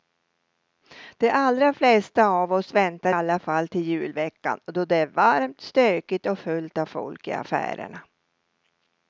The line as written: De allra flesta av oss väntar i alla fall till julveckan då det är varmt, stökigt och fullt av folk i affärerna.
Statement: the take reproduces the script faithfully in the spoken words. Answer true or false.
false